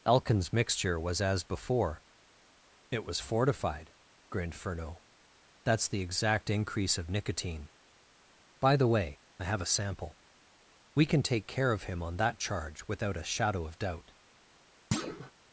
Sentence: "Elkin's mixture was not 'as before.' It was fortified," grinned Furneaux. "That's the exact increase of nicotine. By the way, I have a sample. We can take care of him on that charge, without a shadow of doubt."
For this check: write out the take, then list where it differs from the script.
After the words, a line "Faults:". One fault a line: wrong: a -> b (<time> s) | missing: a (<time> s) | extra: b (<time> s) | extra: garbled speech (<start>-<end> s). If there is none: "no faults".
"Elkin's mixture was 'as before.' It was fortified," grinned Furneaux. "That's the exact increase of nicotine. By the way, I have a sample. We can take care of him on that charge, without a shadow of doubt."
Faults:
missing: not (1.2 s)